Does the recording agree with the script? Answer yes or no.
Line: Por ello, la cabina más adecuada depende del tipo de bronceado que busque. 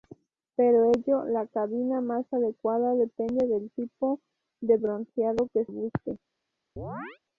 yes